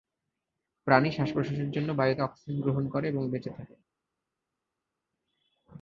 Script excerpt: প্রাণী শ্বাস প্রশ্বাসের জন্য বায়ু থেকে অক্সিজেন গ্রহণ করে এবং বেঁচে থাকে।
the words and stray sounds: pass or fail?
fail